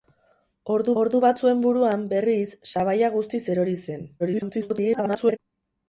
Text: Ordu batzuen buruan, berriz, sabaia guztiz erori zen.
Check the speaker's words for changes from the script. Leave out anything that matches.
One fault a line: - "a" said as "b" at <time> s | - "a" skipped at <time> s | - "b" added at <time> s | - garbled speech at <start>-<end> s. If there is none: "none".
- "ordu" added at 1.0 s
- garbled speech at 4.2-5.4 s